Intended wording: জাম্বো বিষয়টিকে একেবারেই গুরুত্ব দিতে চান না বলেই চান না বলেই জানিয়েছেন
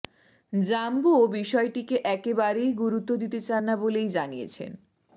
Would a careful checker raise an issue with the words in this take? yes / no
yes